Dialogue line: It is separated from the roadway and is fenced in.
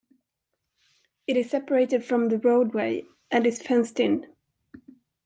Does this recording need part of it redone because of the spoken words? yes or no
no